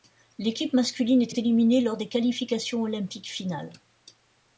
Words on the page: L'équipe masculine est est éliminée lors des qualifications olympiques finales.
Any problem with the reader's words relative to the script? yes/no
no